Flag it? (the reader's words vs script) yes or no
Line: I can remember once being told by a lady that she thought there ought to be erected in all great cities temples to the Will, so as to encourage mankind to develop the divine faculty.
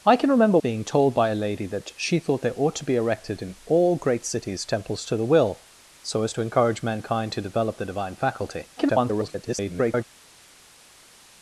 yes